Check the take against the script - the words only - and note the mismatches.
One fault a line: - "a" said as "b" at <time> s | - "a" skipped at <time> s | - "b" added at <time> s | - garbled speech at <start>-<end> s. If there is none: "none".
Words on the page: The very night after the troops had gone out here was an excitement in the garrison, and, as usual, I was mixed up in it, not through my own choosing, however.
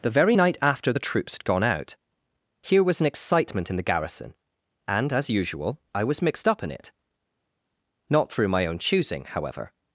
none